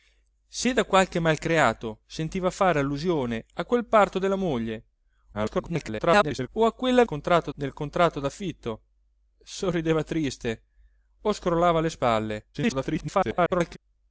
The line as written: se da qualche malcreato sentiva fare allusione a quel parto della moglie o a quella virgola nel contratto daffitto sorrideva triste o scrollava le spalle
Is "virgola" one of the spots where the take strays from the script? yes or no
yes